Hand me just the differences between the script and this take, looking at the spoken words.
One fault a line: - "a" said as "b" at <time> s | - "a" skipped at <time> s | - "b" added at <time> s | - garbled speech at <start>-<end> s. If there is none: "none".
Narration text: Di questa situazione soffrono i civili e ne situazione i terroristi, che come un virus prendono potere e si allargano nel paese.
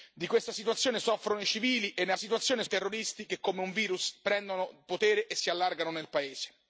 none